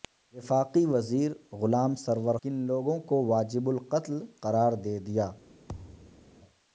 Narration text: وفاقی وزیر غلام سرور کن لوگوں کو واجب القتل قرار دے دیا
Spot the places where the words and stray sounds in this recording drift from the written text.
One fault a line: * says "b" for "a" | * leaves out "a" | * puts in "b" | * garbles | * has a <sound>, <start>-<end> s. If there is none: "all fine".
* has a thud, 5.7-6.3 s